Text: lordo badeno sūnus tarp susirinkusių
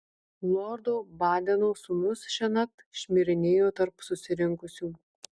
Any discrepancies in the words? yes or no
yes